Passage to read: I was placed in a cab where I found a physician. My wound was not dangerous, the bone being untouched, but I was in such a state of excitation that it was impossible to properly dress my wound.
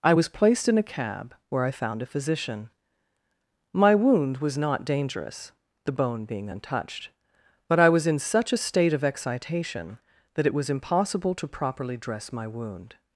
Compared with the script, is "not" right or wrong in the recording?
right